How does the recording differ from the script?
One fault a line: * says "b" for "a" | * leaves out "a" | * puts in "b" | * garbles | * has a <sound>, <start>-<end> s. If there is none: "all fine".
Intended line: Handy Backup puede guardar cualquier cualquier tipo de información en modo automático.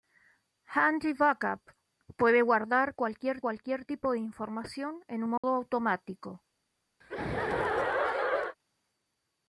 * has a dropout, 5.4-5.4 s
* has a laugh, 7.0-8.6 s